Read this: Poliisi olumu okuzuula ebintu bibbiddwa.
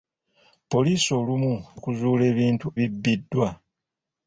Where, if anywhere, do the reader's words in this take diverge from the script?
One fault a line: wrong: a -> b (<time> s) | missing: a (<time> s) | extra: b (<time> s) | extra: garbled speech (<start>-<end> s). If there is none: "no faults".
no faults